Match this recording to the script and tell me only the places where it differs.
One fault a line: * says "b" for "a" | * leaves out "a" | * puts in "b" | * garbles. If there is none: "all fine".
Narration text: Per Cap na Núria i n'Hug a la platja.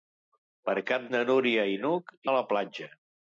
all fine